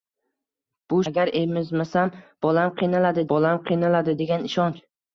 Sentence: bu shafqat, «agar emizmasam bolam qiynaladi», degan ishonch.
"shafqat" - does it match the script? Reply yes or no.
no